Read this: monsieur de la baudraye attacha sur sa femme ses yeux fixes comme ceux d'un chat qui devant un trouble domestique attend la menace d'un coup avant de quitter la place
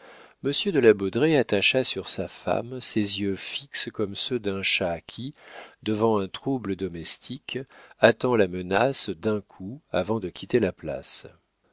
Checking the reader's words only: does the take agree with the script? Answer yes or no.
yes